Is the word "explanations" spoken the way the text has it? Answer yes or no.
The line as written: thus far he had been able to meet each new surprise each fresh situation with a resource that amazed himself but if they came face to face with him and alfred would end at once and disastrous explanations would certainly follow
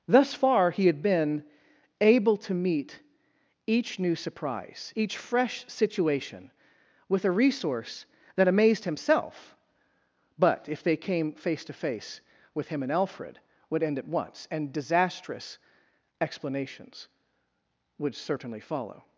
yes